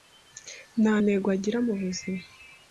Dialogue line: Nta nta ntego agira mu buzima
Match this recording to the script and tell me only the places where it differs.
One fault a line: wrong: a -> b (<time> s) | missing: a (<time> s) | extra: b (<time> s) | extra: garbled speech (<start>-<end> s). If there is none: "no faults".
missing: nta (0.9 s)